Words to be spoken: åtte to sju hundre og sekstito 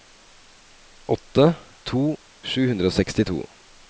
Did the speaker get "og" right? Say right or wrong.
right